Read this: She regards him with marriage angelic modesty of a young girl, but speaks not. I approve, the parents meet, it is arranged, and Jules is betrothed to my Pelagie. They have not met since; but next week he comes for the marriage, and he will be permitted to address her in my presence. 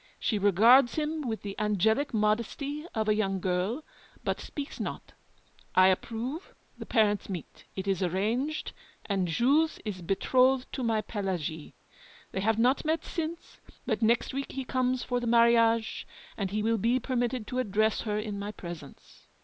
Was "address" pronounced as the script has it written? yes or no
yes